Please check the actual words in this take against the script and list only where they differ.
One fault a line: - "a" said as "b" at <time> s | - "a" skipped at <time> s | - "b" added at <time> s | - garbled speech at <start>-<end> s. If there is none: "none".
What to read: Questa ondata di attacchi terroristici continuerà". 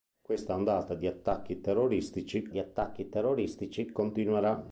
- "di attacchi terroristici" added at 2.5 s